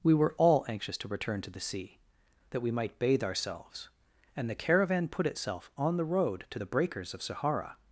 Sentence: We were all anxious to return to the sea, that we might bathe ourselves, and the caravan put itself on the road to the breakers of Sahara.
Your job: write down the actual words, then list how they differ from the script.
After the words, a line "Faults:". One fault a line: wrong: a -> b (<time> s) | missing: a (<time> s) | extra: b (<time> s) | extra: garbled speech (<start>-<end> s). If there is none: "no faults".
We were all anxious to return to the sea, that we might bathe ourselves, and the caravan put itself on the road to the breakers of Sahara.
Faults:
no faults